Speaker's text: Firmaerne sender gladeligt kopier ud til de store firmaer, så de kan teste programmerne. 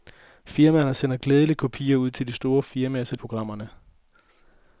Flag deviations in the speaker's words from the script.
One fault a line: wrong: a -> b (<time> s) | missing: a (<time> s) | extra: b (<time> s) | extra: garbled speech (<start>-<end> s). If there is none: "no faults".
missing: de kan teste (3.1 s)